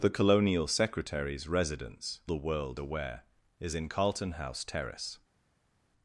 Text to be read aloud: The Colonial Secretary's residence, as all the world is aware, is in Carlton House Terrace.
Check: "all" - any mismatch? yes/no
yes